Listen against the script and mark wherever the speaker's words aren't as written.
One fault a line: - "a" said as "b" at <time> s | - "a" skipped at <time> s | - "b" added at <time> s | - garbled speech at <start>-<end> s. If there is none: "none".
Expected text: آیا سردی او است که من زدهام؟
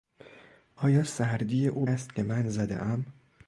none